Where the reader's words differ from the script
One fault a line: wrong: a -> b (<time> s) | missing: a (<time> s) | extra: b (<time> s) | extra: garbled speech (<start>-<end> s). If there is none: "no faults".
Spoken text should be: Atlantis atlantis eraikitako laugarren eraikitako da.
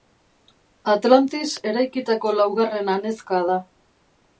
missing: atlantis (1.5 s)
wrong: eraikitako -> anezka (3.0 s)